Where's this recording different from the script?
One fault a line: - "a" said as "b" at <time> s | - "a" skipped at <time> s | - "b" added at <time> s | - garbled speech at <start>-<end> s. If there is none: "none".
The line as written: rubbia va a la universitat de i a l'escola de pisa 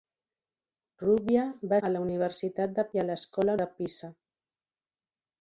none